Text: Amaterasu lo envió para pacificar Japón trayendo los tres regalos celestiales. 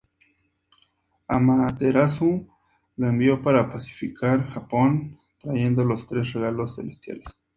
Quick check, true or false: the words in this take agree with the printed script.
true